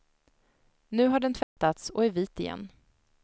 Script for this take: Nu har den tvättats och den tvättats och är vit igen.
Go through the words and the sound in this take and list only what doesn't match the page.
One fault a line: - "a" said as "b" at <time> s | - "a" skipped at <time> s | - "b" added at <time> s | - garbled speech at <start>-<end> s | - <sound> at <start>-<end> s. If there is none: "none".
- dropout at 1.4-1.6 s
- "den tvättats och" skipped at 2.0 s